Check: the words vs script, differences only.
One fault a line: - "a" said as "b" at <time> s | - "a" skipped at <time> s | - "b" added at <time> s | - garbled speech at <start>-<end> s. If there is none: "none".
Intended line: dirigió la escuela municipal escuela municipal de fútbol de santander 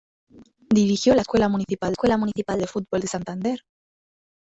none